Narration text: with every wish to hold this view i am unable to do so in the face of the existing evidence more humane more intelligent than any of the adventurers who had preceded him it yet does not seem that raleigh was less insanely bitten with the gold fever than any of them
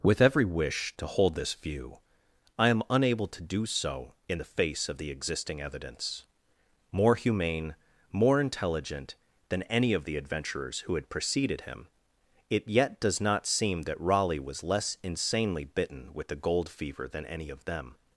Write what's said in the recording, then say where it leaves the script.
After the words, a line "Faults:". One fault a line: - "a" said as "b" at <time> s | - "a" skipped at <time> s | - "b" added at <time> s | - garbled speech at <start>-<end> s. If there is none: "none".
with every wish to hold this view i am unable to do so in the face of the existing evidence more humane more intelligent than any of the adventurers who had preceded him it yet does not seem that raleigh was less insanely bitten with the gold fever than any of them
Faults:
none